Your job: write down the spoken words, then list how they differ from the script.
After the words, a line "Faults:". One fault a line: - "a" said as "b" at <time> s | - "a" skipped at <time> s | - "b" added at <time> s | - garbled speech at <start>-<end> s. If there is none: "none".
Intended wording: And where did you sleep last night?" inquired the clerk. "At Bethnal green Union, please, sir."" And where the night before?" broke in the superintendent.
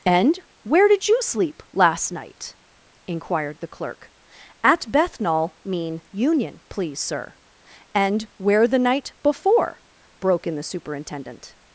And where did you sleep last night?" inquired the clerk. "At Bethnal mean Union, please, sir."" And where the night before?" broke in the superintendent.
Faults:
- "green" said as "mean" at 5.6 s